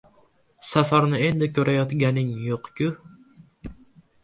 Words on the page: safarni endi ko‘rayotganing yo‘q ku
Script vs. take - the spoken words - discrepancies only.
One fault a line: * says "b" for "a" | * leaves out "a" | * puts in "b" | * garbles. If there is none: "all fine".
all fine